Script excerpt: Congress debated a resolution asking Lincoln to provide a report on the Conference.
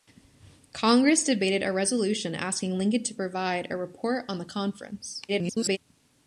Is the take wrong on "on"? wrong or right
right